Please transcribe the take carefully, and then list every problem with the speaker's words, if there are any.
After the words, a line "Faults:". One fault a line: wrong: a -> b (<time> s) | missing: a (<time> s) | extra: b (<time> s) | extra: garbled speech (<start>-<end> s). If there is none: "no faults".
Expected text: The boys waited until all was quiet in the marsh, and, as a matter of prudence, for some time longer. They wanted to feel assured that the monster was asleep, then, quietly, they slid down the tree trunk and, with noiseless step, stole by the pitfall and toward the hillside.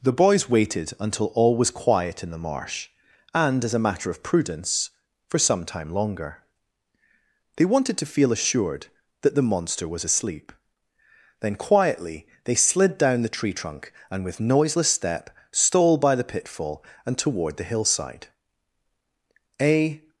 The boys waited until all was quiet in the marsh, and, as a matter of prudence, for some time longer. They wanted to feel assured that the monster was asleep, then, quietly, they slid down the tree trunk and, with noiseless step, stole by the pitfall and toward the hillside. A
Faults:
extra: A (19.6 s)